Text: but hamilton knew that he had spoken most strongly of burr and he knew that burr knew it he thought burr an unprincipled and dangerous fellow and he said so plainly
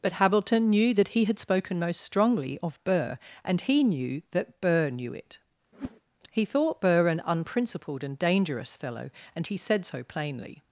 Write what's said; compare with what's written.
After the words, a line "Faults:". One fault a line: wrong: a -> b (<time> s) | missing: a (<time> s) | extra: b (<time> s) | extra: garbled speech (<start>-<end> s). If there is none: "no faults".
but hamilton knew that he had spoken most strongly of burr and he knew that burr knew it he thought burr an unprincipled and dangerous fellow and he said so plainly
Faults:
no faults